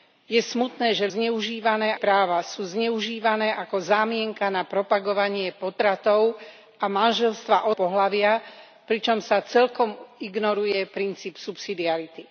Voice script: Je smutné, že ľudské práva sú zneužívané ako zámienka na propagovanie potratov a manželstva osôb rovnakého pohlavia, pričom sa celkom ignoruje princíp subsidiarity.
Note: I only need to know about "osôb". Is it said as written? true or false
false